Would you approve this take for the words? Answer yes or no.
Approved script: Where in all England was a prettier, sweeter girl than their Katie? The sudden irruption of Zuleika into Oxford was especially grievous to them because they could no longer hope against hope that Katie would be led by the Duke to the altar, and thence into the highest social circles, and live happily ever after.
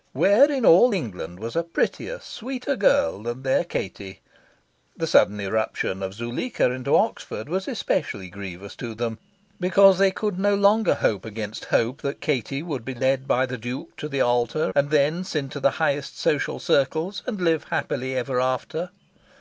yes